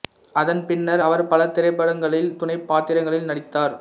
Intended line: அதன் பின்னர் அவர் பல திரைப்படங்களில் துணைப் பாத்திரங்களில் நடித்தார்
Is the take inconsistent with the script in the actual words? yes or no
no